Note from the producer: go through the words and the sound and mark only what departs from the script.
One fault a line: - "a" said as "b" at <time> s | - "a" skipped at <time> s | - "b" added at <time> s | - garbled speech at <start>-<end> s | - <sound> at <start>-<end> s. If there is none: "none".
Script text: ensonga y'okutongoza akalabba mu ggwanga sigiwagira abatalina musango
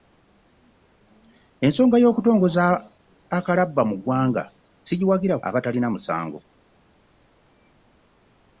none